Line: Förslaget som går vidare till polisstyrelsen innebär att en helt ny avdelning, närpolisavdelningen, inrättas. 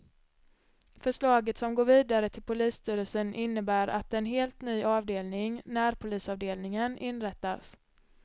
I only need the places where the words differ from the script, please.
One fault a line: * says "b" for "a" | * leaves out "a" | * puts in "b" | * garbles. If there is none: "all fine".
all fine